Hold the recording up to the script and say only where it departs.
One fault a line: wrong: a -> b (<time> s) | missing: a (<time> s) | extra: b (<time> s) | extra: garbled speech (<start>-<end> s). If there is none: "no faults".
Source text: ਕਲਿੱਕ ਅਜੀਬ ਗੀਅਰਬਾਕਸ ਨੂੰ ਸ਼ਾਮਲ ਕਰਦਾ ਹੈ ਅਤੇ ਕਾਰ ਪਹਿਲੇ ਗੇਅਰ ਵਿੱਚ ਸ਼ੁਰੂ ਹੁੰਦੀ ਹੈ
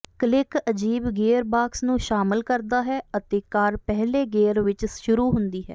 no faults